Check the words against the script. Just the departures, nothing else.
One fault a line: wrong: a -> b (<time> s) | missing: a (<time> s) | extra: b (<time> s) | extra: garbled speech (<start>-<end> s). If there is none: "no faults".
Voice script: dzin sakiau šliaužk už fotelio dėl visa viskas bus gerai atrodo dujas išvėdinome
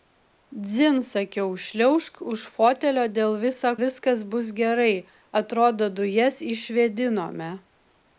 no faults